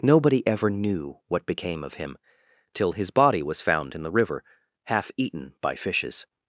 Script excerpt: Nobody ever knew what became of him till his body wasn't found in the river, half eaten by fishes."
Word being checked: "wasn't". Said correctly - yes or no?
no